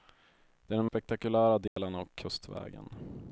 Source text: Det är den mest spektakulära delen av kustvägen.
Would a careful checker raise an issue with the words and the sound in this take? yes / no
yes